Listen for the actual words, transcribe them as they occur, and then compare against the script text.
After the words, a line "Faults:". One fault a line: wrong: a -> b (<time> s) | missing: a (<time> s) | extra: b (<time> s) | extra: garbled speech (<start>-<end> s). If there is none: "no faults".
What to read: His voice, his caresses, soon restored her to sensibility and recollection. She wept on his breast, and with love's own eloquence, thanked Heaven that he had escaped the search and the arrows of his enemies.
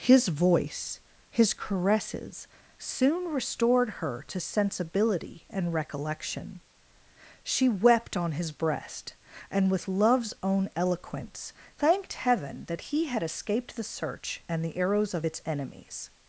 His voice, his caresses, soon restored her to sensibility and recollection. She wept on his breast, and with love's own eloquence, thanked Heaven that he had escaped the search and the arrows of its enemies.
Faults:
wrong: his -> its (15.3 s)